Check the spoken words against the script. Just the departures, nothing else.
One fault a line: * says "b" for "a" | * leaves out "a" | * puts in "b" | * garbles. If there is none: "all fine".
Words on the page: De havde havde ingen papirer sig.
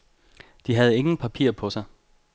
* leaves out "havde"
* puts in "på"